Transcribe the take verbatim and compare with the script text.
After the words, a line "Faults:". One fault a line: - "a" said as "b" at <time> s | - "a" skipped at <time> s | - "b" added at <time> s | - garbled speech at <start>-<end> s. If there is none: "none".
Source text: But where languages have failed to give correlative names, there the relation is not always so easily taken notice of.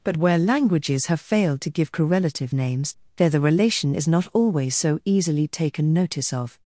But where languages have failed to give correlative names, there the relation is not always so easily taken notice of.
Faults:
none